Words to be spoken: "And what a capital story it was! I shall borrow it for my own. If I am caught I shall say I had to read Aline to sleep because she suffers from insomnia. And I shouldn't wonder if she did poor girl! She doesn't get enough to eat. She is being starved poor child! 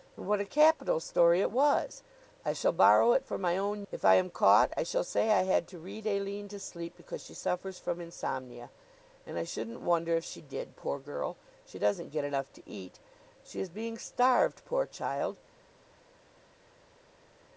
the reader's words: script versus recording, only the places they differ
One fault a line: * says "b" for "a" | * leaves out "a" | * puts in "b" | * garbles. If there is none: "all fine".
all fine